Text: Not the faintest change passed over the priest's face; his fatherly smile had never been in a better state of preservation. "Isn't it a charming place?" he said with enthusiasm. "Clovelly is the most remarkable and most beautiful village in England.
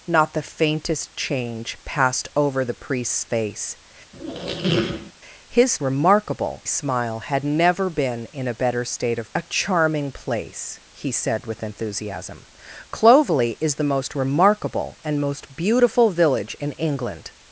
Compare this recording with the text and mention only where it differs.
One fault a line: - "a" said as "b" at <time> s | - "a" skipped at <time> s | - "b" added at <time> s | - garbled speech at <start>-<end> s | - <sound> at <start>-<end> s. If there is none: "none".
- squeak at 4.1-5.1 s
- "fatherly" said as "remarkable" at 5.8 s
- "preservation Isn't it" skipped at 9.3 s